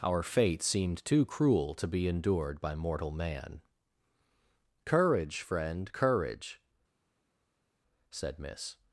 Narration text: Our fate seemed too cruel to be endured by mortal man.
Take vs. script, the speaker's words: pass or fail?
fail